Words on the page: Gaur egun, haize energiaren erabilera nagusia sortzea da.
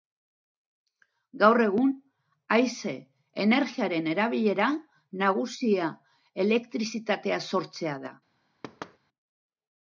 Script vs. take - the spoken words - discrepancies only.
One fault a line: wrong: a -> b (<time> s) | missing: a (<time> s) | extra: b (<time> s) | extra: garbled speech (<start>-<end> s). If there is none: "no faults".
extra: elektrizitatea (6.5 s)